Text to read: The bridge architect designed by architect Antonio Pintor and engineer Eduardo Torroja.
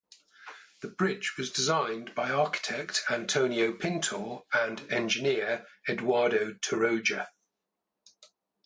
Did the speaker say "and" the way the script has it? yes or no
yes